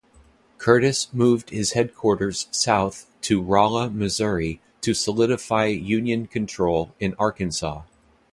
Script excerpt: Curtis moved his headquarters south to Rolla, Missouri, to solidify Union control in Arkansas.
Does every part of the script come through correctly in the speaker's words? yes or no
yes